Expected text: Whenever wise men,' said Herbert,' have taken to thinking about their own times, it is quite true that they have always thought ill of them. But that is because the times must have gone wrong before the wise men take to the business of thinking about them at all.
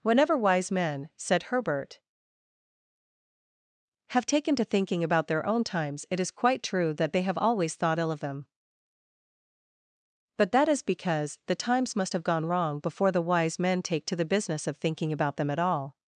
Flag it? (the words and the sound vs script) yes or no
no